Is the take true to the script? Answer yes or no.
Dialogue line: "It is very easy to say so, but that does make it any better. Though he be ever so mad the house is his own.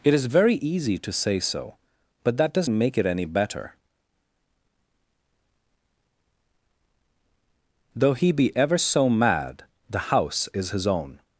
yes